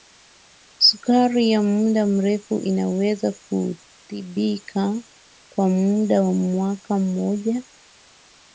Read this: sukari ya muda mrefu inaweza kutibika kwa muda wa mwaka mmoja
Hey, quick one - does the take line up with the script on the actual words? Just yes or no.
yes